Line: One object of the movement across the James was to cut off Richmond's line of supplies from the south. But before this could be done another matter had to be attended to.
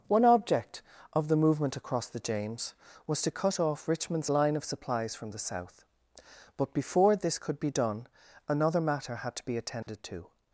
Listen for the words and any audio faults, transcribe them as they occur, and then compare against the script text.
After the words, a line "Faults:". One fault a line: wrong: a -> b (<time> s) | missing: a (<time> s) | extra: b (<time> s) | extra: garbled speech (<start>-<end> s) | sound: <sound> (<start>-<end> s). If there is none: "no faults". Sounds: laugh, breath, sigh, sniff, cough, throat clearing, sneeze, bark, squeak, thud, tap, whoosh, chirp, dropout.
One object of the movement across the James was to cut off Richmond's line of supplies from the south. But before this could be done another matter had to be attended to.
Faults:
sound: dropout (9.8-9.9 s)